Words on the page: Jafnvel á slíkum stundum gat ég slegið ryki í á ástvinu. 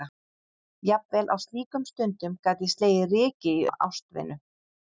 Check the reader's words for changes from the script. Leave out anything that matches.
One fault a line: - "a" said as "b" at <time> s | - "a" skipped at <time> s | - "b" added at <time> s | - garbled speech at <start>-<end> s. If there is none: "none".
none